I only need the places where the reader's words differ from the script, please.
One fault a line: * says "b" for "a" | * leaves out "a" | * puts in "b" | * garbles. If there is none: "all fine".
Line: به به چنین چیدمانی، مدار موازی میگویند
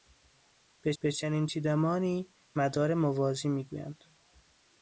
all fine